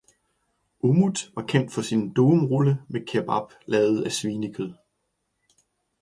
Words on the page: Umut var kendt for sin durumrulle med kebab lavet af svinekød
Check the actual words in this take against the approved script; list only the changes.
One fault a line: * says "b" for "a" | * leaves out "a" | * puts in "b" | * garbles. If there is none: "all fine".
all fine